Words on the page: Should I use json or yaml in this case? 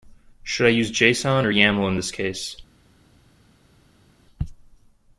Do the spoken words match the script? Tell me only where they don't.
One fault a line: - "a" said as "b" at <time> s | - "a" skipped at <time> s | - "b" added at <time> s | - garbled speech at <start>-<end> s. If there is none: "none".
none